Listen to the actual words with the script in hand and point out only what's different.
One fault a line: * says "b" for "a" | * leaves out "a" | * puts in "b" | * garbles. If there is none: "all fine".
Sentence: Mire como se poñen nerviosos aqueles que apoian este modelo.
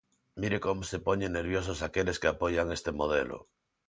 all fine